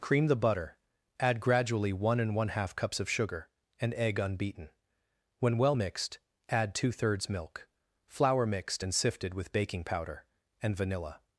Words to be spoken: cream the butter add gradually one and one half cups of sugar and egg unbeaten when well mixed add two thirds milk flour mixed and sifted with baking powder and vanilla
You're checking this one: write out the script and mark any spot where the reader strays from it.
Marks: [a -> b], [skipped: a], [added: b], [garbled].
cream the butter add gradually one and one half cups of sugar and egg unbeaten when well mixed add two thirds milk flour mixed and sifted with baking powder and vanilla